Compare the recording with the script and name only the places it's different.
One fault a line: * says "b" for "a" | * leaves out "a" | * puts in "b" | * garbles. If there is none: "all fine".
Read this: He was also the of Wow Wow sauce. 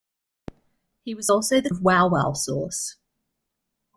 all fine